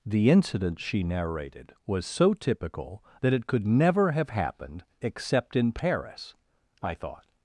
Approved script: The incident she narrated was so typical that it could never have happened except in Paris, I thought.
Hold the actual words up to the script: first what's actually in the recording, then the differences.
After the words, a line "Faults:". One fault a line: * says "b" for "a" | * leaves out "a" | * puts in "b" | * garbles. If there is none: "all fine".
The incident she narrated was so typical that it could never have happened except in Paris, I thought.
Faults:
all fine